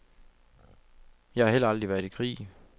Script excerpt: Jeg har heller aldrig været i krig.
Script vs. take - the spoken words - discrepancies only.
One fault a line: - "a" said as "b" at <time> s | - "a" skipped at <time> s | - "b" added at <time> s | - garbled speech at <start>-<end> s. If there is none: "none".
none